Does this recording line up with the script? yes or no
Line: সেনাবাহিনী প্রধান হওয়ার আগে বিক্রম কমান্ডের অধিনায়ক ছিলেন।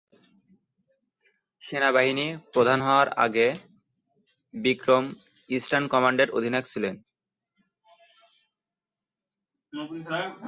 no